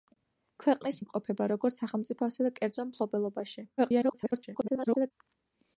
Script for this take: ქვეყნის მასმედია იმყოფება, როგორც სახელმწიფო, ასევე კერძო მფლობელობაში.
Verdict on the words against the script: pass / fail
fail